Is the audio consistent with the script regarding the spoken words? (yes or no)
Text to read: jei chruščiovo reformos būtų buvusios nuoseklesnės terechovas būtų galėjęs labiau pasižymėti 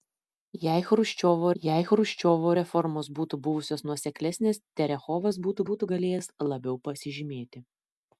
no